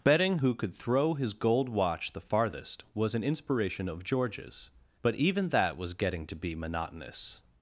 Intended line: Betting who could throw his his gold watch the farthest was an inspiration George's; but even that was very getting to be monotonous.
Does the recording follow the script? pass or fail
fail